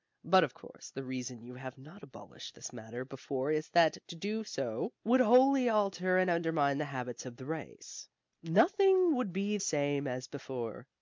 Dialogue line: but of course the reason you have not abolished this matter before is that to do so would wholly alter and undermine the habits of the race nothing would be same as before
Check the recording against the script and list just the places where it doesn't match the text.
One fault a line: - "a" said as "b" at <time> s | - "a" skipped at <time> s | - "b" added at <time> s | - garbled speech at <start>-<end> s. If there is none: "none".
none